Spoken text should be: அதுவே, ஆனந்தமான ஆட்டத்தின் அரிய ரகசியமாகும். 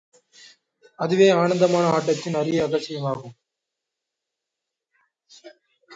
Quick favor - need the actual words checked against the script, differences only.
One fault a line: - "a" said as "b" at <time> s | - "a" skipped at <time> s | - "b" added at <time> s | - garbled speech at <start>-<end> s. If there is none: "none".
none